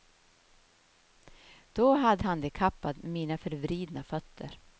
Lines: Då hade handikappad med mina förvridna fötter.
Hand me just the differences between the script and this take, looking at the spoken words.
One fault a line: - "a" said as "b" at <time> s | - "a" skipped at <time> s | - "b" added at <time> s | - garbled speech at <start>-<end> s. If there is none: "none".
none